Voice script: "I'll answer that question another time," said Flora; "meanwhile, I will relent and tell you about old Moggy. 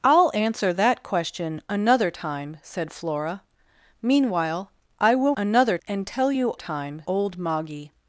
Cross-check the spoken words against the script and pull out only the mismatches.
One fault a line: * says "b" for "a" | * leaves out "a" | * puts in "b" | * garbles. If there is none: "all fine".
* says "another" for "relent"
* says "time" for "about"